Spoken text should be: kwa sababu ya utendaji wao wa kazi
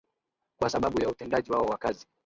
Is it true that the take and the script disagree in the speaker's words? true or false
false